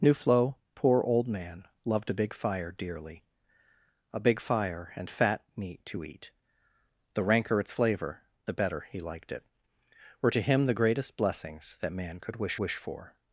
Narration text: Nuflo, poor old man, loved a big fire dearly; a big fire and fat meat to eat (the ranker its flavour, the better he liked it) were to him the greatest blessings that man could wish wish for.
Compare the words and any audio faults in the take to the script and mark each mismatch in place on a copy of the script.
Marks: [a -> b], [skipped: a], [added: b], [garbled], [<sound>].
Nuflo, poor old man, loved a big fire dearly; a big fire and fat meat to eat (the ranker its flavour, the better he liked it) were to him the greatest blessings that man could wish wish for.